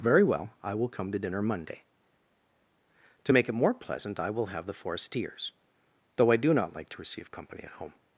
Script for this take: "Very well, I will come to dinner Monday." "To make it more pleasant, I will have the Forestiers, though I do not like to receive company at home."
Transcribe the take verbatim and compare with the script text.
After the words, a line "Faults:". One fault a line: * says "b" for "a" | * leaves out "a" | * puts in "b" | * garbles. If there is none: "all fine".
"Very well, I will come to dinner Monday." "To make it more pleasant, I will have the Forestiers, though I do not like to receive company at home."
Faults:
all fine